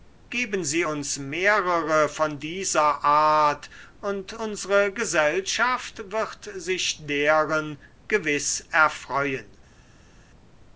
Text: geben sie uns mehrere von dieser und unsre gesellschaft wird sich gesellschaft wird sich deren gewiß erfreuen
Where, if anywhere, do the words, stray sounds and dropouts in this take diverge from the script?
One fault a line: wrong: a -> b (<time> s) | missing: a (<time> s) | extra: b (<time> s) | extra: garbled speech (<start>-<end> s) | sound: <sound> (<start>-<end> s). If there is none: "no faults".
extra: art (3.0 s)
missing: gesellschaft wird sich (7.1 s)